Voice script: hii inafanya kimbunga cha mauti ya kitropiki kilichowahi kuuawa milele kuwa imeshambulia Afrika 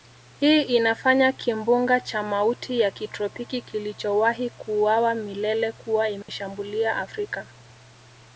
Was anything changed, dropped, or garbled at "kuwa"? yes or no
no